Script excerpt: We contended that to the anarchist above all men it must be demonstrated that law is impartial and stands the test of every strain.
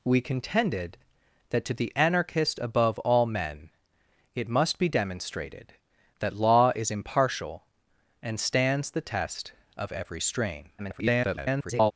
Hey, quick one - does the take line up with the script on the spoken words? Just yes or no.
no